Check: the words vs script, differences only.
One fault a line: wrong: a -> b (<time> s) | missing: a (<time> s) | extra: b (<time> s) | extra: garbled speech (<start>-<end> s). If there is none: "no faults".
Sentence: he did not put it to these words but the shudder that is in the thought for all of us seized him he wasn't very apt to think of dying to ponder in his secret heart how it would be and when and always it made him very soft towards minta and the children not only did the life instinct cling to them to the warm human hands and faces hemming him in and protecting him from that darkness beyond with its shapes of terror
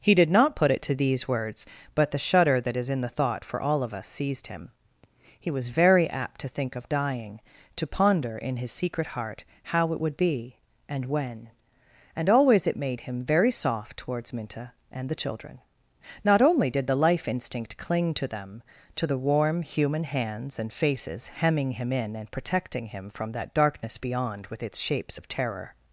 wrong: wasn't -> was (5.5 s)